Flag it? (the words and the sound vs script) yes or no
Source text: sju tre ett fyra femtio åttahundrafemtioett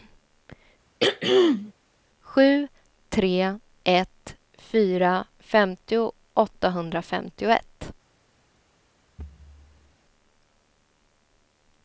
yes